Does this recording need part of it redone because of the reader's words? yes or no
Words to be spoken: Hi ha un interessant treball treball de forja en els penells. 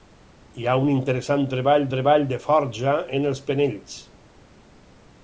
no